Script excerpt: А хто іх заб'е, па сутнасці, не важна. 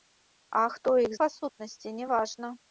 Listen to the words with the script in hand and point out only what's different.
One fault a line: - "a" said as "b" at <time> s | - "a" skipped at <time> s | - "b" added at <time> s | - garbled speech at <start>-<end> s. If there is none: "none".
- "заб'е" skipped at 1.1 s